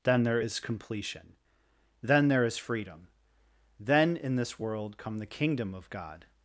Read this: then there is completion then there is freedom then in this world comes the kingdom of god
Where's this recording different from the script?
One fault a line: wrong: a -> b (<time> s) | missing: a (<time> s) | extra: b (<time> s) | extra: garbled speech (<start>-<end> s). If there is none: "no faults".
wrong: comes -> come (5.0 s)